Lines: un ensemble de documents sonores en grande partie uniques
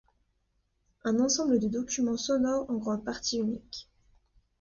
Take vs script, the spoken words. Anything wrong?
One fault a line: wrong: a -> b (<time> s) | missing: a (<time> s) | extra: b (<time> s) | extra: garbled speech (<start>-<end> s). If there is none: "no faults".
no faults